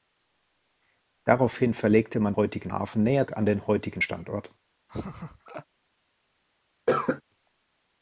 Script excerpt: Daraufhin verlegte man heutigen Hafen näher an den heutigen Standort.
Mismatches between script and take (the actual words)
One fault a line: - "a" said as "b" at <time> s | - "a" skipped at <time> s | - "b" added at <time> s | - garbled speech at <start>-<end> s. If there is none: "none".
none